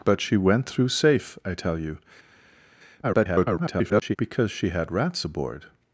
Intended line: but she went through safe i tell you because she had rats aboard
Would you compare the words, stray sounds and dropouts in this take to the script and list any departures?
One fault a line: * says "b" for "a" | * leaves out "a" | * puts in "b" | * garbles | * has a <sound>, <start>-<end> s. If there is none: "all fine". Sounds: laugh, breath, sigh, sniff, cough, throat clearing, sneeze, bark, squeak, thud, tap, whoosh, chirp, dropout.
* garbles